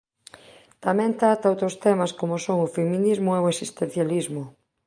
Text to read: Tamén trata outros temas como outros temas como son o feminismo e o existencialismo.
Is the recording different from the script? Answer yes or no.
yes